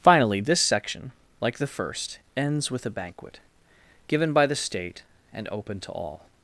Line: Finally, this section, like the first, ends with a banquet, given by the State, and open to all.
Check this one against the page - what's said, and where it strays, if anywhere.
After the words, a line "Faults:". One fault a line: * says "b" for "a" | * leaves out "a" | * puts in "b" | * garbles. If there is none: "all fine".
Finally, this section, like the first, ends with a banquet, given by the State, and open to all.
Faults:
all fine